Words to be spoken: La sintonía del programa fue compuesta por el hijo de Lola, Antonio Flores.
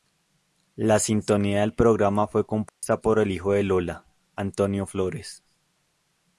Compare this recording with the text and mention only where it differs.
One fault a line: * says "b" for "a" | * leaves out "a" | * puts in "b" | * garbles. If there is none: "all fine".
all fine